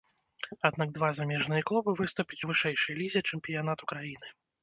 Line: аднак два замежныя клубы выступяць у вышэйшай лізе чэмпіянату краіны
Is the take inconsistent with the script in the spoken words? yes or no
no